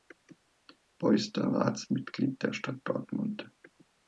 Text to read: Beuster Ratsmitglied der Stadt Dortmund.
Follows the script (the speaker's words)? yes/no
yes